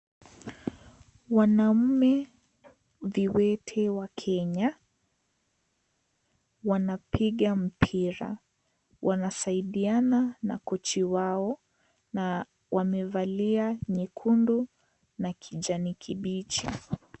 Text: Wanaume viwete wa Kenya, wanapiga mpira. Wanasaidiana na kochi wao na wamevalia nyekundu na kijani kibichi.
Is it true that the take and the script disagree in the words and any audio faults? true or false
false